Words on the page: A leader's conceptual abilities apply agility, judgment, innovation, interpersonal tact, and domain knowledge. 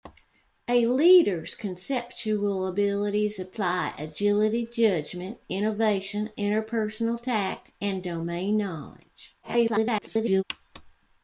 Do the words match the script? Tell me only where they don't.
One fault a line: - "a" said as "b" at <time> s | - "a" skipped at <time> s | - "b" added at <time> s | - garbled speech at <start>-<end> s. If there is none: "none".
- garbled speech at 9.4-10.4 s